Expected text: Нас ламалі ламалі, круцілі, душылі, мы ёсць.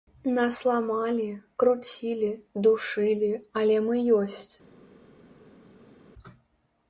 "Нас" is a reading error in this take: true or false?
false